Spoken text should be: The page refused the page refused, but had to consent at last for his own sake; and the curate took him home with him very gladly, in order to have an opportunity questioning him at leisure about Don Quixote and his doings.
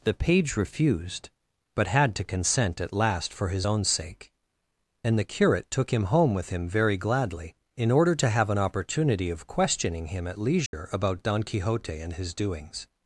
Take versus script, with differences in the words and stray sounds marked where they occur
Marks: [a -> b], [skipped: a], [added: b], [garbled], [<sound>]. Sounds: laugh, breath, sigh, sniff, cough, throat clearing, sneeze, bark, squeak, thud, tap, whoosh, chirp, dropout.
The page refused [skipped: the page refused,] but had to consent at last for his own sake; and the curate took him home with him very gladly, in order to have an opportunity [added: of] questioning him at leisure [dropout] about Don Quixote and his doings.